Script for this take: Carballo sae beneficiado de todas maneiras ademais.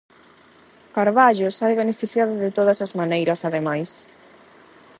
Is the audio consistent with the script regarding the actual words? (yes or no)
no